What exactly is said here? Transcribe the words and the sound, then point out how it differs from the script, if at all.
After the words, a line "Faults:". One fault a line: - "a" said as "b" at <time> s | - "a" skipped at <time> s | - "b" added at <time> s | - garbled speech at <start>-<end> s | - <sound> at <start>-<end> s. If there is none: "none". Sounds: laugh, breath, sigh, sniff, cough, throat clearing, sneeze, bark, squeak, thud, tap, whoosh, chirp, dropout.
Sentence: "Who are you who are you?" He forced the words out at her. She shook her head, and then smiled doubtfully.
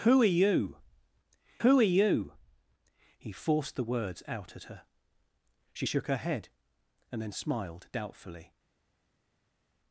"Who are you who are you?" He forced the words out at her. She shook her head, and then smiled doubtfully.
Faults:
none